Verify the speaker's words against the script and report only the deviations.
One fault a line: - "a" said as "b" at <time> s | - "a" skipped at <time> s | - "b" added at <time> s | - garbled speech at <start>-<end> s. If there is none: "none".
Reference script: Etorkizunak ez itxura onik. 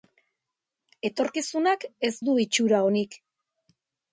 - "du" added at 2.3 s